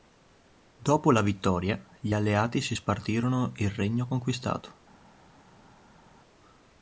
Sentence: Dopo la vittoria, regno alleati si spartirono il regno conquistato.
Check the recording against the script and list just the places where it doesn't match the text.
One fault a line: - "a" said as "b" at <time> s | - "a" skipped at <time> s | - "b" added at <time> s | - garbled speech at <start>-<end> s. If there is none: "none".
- "regno" said as "gli" at 2.0 s